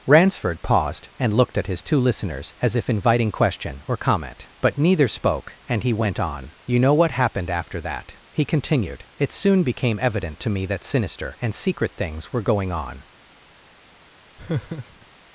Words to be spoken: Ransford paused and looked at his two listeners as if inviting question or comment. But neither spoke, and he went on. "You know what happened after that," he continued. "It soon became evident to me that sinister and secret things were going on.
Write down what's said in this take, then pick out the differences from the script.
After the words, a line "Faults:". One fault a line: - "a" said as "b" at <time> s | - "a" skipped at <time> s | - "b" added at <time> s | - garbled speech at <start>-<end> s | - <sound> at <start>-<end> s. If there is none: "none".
Ransford paused and looked at his two listeners as if inviting question or comment. But neither spoke, and he went on. "You know what happened after that," he continued. "It soon became evident to me that sinister and secret things were going on.
Faults:
- laugh at 14.4-15.1 s